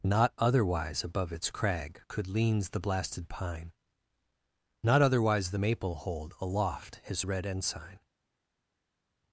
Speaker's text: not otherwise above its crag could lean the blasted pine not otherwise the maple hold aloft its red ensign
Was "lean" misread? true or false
true